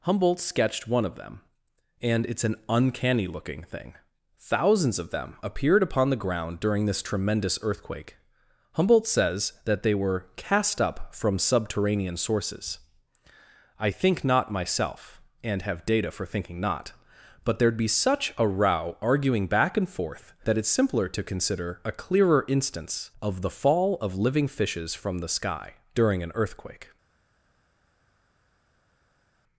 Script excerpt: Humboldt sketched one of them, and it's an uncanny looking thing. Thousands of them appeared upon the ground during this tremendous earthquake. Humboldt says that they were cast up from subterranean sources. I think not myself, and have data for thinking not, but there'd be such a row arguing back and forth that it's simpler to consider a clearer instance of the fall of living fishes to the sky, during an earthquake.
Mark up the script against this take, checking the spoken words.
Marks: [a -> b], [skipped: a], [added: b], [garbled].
Humboldt sketched one of them, and it's an uncanny looking thing. Thousands of them appeared upon the ground during this tremendous earthquake. Humboldt says that they were cast up from subterranean sources. I think not myself, and have data for thinking not, but there'd be such a row arguing back and forth that it's simpler to consider a clearer instance of the fall of living fishes [to -> from] the sky, during an earthquake.